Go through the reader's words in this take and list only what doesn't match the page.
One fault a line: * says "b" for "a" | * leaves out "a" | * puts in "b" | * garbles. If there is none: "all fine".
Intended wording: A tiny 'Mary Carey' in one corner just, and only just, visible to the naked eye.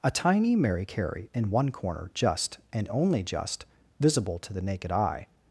all fine